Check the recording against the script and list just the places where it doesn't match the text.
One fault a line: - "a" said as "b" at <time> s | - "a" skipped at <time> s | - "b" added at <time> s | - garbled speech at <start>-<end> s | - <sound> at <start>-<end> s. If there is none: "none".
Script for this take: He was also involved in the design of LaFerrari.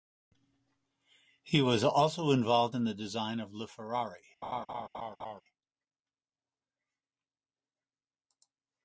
- laugh at 4.4-5.4 s